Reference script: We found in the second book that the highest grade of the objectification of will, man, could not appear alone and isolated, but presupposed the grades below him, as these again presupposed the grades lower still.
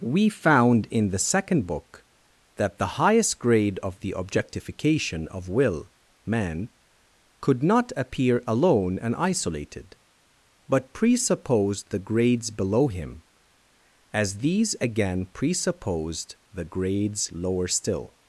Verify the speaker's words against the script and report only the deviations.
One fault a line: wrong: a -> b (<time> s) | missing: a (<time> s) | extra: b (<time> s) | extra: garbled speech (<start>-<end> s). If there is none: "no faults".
no faults